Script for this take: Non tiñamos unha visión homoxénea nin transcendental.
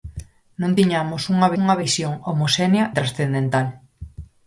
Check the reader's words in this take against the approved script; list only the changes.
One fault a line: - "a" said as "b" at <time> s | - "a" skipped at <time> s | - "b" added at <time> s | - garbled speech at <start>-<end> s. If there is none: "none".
- "unha" added at 1.6 s
- "nin" skipped at 2.9 s